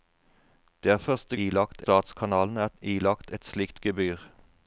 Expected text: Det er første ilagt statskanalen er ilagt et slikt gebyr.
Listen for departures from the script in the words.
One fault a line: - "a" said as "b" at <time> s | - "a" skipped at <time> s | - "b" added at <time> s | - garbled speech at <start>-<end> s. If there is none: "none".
none